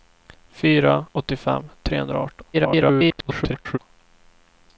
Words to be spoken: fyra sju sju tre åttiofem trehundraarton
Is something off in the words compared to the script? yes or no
yes